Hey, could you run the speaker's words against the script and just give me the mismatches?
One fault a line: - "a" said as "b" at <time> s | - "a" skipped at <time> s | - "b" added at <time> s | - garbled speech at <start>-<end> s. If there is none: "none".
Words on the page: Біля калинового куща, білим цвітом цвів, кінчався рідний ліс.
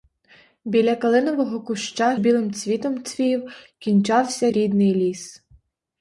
none